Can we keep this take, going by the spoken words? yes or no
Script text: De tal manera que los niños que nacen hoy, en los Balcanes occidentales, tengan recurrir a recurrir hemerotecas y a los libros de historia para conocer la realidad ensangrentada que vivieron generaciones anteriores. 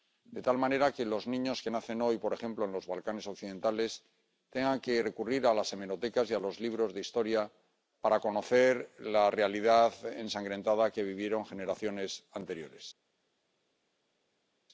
no